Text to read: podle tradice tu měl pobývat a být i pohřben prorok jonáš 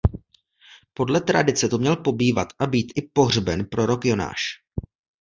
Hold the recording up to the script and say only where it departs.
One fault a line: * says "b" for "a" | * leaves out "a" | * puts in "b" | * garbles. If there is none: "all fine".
all fine